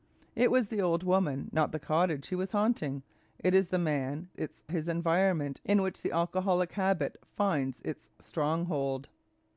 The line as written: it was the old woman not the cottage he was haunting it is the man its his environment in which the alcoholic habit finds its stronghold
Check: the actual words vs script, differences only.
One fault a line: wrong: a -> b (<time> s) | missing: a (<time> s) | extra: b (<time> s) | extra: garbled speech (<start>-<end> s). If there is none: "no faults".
no faults